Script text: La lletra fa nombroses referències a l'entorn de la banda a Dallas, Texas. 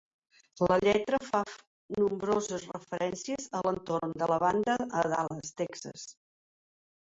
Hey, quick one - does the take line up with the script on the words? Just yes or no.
yes